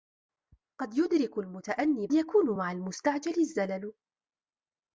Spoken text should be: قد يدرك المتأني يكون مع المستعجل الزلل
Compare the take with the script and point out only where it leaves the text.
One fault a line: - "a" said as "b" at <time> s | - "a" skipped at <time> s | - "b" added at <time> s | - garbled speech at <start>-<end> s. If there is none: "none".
none